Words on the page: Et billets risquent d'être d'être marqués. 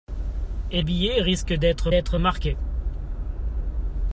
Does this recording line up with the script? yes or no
yes